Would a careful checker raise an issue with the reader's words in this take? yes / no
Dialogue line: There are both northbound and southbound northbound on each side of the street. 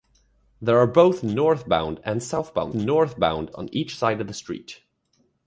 no